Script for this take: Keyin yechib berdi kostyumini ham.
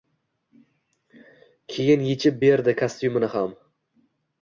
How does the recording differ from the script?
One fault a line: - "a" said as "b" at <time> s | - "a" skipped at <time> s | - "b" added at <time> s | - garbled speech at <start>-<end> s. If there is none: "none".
none